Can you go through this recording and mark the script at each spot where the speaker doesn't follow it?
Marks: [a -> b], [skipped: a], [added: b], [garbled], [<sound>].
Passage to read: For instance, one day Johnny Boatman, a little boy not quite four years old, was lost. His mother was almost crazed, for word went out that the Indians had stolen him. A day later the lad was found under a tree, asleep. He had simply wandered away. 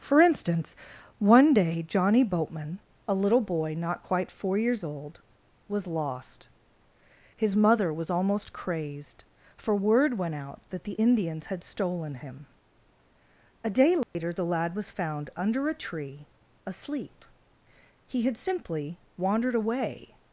For instance, one day Johnny Boatman, a little boy not quite four years old, was lost. His mother was almost crazed, for word went out that the Indians had stolen him. A day later [dropout] the lad was found under a tree, asleep. He had simply wandered away.